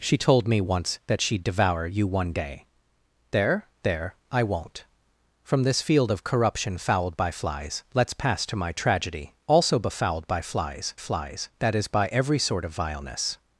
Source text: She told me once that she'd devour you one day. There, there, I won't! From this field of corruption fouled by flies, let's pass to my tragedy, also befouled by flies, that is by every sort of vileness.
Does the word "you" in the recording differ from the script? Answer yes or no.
no